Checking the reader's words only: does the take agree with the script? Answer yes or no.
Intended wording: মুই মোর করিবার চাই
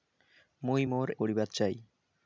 yes